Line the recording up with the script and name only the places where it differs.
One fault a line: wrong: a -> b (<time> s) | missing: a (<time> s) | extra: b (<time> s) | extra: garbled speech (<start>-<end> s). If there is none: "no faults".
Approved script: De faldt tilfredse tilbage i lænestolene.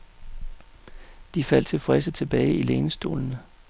no faults